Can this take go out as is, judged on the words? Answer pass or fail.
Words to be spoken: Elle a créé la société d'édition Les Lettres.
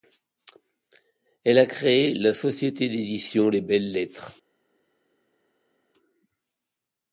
fail